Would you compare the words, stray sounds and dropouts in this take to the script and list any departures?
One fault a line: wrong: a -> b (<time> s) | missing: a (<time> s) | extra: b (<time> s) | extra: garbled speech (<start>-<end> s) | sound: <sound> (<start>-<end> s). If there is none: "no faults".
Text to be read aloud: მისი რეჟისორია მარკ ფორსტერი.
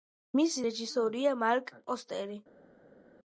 no faults